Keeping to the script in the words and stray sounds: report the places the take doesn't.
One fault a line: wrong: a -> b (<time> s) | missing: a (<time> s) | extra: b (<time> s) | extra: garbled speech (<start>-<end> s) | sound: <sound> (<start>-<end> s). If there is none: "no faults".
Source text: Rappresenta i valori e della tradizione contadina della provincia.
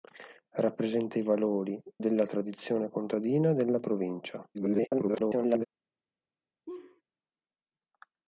missing: e (1.8 s)
extra: garbled speech (4.5-5.7 s)
sound: laugh (6.7-7.0 s)